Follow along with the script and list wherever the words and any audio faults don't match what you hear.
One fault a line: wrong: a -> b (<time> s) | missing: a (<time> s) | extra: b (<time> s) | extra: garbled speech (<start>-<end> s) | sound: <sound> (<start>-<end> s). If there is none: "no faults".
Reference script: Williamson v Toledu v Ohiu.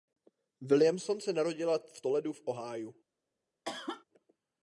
extra: se narodila (1.2 s)
sound: cough (3.6-4.0 s)